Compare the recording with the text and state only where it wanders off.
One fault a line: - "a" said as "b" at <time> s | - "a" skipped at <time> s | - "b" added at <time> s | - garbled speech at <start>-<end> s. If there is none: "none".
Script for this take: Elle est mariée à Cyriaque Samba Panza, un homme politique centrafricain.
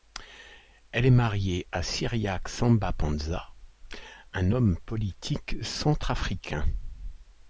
none